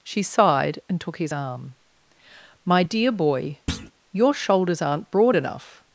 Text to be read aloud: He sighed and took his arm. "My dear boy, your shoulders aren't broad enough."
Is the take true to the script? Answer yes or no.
no